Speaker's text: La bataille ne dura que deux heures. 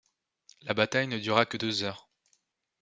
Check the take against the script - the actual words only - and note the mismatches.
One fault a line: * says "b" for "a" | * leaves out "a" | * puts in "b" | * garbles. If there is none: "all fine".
all fine